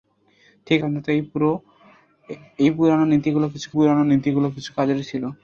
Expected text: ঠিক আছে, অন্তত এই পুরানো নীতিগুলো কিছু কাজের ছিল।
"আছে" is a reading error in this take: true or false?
true